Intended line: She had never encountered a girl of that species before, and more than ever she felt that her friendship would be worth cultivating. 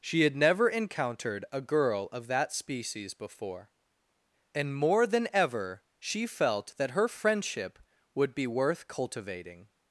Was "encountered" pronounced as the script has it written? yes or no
yes